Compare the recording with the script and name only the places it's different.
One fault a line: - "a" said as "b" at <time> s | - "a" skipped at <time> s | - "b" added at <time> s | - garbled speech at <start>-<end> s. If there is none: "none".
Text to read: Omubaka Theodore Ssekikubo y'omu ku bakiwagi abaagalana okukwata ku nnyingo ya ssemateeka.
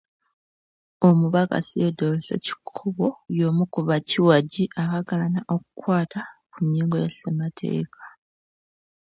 none